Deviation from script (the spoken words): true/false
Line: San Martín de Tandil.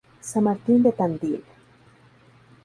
false